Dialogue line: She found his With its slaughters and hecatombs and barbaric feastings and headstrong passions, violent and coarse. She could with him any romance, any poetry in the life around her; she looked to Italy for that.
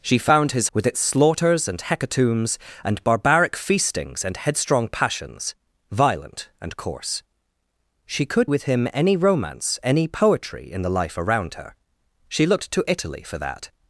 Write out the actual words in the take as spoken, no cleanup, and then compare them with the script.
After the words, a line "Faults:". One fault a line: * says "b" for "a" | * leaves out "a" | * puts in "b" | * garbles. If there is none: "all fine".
She found his With its slaughters and hecatombs and barbaric feastings and headstrong passions, violent and coarse. She could with him any romance, any poetry in the life around her; she looked to Italy for that.
Faults:
all fine